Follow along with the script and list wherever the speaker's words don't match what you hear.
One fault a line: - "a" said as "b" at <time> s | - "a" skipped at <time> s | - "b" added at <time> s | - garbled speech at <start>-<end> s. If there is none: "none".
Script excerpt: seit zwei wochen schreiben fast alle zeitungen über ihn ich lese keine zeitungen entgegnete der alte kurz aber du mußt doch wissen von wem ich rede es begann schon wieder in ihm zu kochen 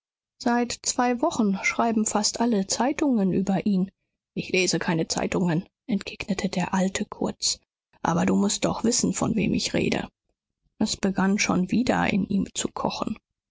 none